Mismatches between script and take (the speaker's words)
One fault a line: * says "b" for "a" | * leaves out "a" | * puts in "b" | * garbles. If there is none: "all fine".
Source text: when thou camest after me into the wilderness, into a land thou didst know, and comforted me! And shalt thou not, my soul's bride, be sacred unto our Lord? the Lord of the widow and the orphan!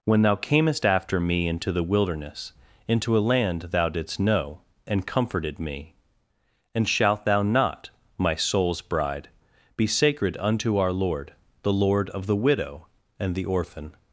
all fine